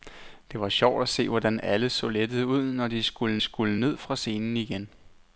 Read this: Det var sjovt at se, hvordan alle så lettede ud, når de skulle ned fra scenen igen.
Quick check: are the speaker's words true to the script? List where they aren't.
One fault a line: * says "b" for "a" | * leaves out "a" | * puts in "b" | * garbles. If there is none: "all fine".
* puts in "skulle"